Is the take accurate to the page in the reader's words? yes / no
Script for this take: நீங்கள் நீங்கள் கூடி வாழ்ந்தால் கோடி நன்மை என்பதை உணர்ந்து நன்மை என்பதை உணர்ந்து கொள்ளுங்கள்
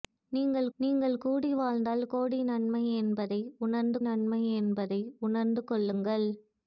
yes